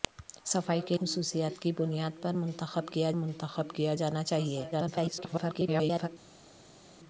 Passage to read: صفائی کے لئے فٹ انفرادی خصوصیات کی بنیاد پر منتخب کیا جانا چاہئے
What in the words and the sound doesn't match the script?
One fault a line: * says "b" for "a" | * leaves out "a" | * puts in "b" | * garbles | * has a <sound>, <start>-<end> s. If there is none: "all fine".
* leaves out "لئے فٹ انفرادی"
* puts in "منتخب کیا"
* garbles